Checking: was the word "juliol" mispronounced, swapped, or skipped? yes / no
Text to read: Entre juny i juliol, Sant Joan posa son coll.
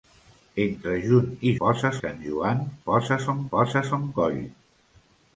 yes